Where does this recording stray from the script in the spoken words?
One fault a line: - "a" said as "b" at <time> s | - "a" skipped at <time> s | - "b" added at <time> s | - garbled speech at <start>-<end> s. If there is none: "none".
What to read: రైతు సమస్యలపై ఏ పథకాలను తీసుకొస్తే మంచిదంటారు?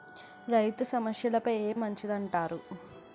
- "పథకాలను తీసుకొస్తే" skipped at 1.7 s